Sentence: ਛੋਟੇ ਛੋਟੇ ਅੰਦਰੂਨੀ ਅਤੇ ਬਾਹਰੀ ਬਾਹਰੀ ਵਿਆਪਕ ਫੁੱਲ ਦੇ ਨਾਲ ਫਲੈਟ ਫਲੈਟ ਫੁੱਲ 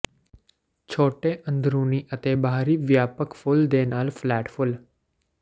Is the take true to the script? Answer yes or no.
no